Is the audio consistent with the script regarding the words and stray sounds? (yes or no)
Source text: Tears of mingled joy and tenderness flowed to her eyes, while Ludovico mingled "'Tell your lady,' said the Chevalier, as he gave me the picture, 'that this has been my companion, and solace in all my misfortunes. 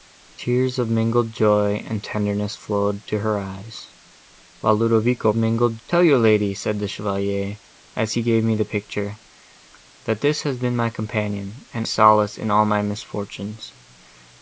yes